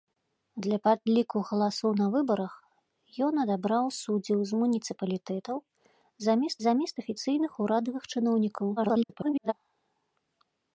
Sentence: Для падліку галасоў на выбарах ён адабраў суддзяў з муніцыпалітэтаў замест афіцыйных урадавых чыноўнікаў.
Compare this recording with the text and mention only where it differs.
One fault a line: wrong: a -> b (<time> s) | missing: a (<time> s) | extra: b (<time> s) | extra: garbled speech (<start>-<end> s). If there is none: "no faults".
extra: замест (6.7 s)
extra: garbled speech (8.8-9.5 s)